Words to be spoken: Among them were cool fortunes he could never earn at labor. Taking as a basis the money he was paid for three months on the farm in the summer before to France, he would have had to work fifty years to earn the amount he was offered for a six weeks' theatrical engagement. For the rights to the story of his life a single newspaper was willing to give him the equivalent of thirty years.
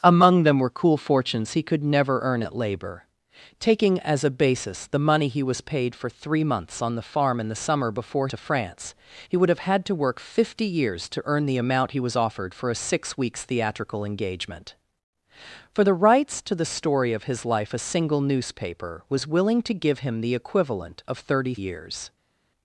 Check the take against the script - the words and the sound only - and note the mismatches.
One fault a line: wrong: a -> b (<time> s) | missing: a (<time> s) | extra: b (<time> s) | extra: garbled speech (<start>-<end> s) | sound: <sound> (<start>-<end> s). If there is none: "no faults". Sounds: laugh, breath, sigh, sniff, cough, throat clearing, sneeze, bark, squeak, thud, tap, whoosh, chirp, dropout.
no faults